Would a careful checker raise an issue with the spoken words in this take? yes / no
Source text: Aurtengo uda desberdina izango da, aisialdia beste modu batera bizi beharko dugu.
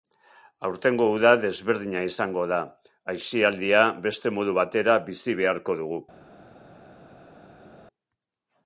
no